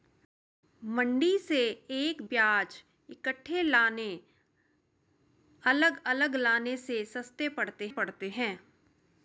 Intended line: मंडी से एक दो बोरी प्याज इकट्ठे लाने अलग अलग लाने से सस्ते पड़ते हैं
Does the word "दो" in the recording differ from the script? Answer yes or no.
yes